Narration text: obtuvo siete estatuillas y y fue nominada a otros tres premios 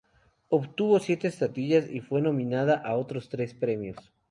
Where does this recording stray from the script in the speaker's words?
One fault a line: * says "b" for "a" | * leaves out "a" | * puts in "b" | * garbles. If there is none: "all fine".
* leaves out "y"